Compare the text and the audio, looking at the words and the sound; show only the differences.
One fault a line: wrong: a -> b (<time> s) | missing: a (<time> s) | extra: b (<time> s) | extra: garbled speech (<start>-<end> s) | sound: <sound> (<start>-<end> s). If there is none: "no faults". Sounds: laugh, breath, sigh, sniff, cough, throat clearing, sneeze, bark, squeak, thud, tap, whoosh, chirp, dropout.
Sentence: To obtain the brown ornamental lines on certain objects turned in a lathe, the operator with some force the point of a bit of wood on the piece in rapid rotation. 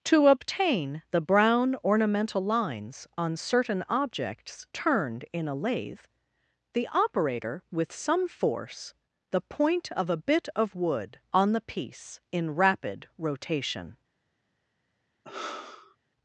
sound: sigh (15.2-16.0 s)